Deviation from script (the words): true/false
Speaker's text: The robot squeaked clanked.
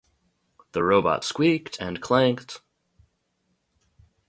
true